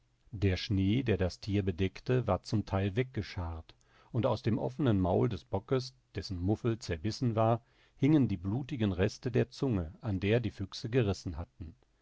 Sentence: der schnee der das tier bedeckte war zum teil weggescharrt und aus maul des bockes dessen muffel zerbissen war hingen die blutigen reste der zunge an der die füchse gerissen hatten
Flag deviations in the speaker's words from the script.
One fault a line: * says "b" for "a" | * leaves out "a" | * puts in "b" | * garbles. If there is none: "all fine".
* puts in "dem offenen"